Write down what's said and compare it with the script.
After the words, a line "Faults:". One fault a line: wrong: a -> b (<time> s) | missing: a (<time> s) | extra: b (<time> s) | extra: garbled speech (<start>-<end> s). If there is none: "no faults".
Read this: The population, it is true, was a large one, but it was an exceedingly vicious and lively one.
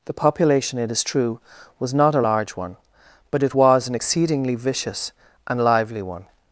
The population, it is true, was not a large one, but it was an exceedingly vicious and lively one.
Faults:
extra: not (1.9 s)